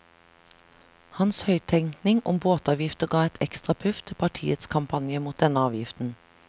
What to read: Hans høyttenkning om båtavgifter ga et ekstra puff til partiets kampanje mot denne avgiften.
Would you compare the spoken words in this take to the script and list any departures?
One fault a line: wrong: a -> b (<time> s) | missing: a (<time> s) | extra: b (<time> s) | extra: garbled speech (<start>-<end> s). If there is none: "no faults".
no faults